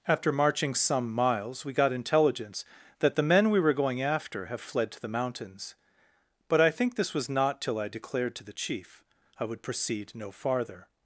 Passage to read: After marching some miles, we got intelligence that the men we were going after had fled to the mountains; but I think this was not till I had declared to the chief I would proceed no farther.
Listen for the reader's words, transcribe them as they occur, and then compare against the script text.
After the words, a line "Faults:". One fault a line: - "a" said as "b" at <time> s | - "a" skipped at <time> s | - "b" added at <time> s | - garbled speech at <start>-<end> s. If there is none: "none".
After marching some miles, we got intelligence that the men we were going after have fled to the mountains; but I think this was not till I declared to the chief I would proceed no farther.
Faults:
- "had" said as "have" at 4.5 s
- "had" skipped at 7.9 s